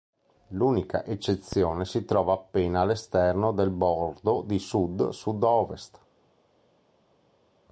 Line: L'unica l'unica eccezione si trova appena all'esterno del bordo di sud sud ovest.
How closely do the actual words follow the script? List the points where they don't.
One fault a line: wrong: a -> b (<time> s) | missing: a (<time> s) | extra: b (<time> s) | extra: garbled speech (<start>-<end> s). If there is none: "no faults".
missing: l'unica (1.1 s)